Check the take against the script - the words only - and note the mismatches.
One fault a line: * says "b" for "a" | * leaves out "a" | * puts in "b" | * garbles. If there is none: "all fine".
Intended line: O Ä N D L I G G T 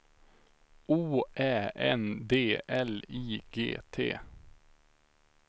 * leaves out "G"